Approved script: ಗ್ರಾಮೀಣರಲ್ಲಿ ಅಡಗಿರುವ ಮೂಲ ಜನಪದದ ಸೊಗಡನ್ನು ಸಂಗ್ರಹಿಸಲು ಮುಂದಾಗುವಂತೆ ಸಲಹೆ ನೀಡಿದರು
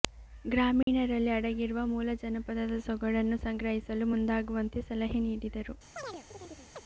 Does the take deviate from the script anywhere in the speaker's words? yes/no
no